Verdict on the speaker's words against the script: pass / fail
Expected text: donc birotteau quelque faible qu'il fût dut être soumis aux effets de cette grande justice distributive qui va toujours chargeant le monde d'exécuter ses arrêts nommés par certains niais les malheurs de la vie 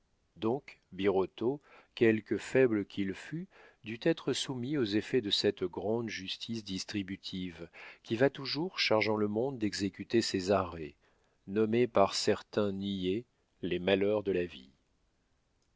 pass